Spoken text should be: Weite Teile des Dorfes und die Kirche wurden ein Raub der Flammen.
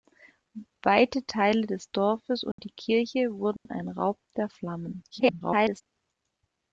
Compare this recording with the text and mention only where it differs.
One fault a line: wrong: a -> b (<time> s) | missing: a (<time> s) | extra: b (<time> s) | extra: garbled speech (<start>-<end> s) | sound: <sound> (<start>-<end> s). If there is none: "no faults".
sound: dropout (2.5-2.6 s)
sound: dropout (3.6-3.7 s)
extra: garbled speech (5.1-5.8 s)